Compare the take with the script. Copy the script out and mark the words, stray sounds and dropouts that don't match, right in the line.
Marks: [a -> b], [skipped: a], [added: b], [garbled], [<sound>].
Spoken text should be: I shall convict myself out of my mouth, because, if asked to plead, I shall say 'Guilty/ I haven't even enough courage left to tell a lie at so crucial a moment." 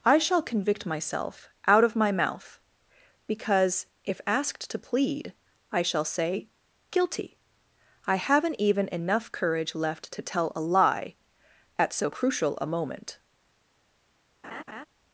I shall convict myself out of my mouth, because, if asked to plead, I shall say 'Guilty/ I haven't even enough courage left to tell a lie at so crucial a moment." [laugh]